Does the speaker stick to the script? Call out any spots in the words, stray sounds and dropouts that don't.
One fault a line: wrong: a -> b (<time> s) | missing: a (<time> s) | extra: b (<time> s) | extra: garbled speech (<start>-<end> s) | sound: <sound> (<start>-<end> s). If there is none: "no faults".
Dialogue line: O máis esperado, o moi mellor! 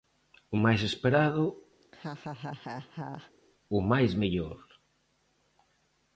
sound: laugh (1.8-3.3 s)
wrong: moi -> máis (3.9 s)